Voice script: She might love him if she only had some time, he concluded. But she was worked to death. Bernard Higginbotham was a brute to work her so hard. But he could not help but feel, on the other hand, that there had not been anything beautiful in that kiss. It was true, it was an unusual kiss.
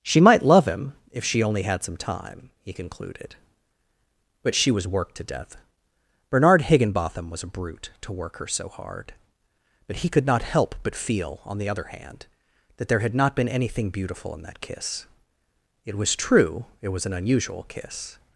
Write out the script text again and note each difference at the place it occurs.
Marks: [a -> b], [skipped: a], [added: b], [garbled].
She might love him if she only had some time, he concluded. But she was worked to death. Bernard Higginbotham was a brute to work her so hard. But he could not help but feel, on the other hand, that there had not been anything beautiful in that kiss. It was true, it was an unusual kiss.